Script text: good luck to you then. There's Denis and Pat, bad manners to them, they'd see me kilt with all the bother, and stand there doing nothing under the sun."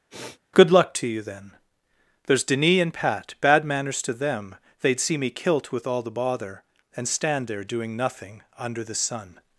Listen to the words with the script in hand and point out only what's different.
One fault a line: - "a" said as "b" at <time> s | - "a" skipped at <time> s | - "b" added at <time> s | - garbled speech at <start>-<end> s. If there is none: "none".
none